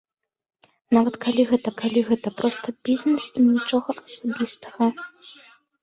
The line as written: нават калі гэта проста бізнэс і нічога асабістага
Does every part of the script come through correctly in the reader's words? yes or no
no